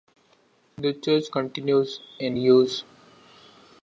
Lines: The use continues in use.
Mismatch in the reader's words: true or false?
true